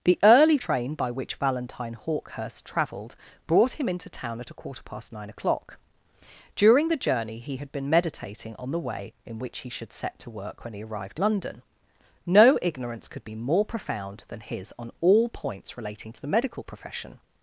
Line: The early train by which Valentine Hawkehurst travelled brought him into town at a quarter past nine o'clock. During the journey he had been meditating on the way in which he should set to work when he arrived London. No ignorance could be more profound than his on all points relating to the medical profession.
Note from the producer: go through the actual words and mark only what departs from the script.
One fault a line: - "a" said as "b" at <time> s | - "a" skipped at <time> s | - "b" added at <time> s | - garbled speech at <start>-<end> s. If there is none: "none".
none